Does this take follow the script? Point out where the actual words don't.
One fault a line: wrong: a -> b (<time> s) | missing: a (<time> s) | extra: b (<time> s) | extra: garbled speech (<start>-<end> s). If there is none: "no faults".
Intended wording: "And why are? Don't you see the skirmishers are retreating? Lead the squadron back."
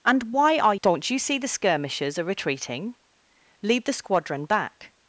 no faults